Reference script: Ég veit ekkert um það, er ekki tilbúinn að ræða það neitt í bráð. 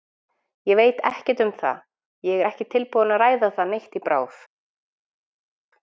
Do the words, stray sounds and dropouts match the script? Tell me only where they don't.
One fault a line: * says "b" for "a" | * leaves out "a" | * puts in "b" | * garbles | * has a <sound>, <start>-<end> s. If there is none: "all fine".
* puts in "ég"